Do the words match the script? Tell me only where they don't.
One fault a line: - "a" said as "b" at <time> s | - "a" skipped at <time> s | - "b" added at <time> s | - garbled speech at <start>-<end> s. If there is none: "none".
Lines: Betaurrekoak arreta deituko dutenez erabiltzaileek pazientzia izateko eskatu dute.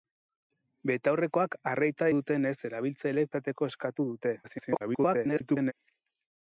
- "deituko" skipped at 2.1 s
- "pazientzia" skipped at 3.3 s
- garbled speech at 4.4-5.7 s